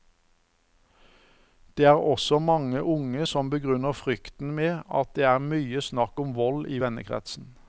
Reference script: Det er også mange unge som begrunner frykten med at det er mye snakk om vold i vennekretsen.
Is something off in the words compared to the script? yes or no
no